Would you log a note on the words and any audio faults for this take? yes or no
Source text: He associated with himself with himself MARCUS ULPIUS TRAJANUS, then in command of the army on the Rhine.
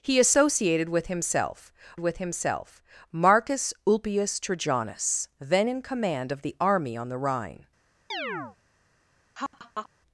yes